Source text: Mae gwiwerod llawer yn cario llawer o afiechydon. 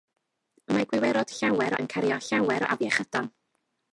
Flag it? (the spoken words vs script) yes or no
no